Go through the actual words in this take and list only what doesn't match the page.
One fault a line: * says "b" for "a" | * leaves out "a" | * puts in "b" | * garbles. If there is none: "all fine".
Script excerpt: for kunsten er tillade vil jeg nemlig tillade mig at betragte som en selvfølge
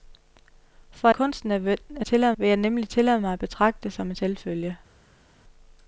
all fine